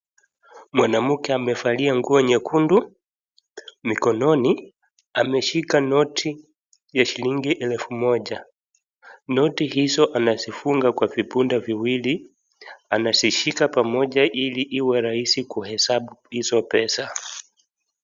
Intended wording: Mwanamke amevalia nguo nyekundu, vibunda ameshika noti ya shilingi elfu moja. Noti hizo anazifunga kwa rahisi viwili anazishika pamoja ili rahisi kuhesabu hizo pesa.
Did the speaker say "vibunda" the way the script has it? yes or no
no